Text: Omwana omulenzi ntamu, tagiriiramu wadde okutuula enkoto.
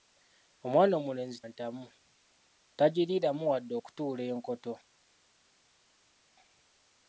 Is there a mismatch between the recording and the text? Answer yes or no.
no